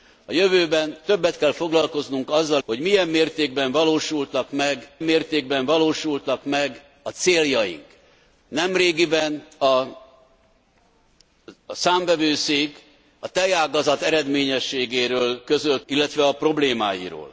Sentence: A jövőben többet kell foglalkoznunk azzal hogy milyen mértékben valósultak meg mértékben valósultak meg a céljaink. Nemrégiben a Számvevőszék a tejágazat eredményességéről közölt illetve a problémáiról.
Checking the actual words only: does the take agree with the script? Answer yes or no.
yes